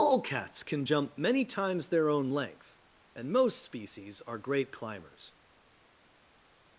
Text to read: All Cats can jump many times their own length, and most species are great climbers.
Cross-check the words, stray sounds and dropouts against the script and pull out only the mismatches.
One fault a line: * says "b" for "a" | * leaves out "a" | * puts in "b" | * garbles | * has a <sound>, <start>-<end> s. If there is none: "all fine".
all fine